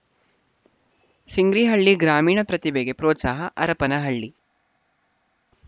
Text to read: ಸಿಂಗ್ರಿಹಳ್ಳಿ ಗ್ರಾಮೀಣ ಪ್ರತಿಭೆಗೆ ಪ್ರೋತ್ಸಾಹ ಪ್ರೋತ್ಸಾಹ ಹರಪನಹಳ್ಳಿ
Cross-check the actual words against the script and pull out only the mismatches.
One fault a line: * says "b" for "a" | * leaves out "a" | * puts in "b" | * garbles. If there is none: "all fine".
* leaves out "ಪ್ರೋತ್ಸಾಹ"